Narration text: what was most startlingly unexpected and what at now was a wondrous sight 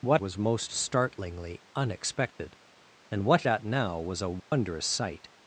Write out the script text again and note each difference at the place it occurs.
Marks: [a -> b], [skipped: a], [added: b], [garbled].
what was most startlingly unexpected and what at now was a wondrous sight